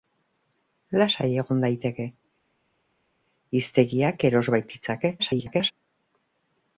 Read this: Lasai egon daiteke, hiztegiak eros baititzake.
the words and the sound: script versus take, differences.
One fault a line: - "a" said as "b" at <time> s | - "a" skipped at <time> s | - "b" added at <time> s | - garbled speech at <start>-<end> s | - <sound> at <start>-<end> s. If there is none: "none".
- garbled speech at 5.2-5.7 s